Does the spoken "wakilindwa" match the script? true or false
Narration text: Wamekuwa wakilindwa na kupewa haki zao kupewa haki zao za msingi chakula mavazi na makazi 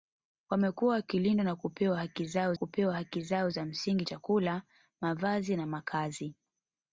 true